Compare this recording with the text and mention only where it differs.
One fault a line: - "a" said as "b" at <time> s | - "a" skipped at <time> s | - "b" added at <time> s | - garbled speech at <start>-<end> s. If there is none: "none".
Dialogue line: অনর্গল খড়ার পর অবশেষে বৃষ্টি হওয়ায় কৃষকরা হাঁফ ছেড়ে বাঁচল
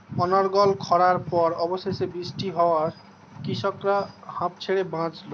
none